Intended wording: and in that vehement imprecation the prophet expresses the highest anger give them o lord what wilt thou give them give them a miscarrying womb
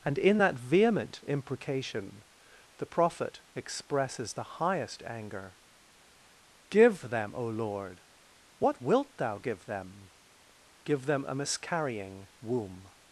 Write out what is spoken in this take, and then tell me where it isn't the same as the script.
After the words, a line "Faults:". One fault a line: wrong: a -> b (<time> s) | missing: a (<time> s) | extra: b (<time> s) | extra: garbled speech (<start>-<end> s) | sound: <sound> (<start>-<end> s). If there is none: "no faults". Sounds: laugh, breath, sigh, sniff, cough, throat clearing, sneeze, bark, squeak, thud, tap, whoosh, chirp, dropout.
and in that vehement imprecation the prophet expresses the highest anger give them o lord what wilt thou give them give them a miscarrying womb
Faults:
no faults